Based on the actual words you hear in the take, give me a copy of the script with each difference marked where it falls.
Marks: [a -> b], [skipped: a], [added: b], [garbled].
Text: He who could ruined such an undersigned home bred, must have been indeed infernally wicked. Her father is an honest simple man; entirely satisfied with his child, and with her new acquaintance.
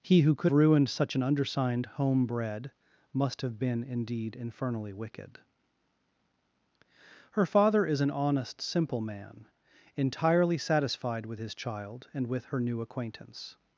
He who could ruined such an undersigned home bred, must have been indeed infernally wicked. Her father is an honest simple man; entirely satisfied with his child, and with her new acquaintance.